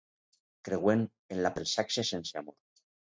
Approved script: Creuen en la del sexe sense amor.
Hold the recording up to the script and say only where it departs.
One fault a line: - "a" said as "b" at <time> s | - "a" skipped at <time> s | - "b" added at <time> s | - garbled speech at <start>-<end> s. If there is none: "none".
none